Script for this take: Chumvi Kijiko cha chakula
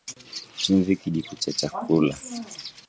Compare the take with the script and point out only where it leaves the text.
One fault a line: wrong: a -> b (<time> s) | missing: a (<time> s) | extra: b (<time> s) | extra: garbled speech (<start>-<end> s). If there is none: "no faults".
no faults